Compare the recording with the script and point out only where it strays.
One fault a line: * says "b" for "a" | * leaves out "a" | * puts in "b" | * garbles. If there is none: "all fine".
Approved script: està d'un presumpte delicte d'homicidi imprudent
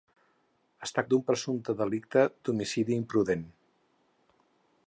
all fine